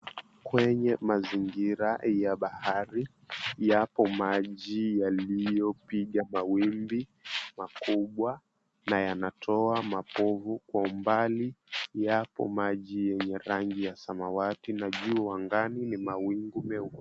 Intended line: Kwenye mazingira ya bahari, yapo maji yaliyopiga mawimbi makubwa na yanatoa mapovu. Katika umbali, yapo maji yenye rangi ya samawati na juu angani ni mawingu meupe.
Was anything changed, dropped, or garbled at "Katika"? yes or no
yes